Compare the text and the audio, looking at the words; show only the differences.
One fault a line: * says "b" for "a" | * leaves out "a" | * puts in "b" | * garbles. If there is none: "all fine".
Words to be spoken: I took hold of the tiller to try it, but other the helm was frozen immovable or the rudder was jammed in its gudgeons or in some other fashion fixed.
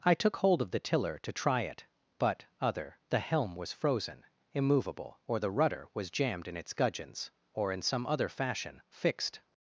all fine